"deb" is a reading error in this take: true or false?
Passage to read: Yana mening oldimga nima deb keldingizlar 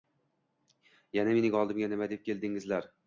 false